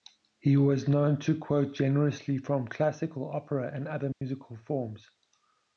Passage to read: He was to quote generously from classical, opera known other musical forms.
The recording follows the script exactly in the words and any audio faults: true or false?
false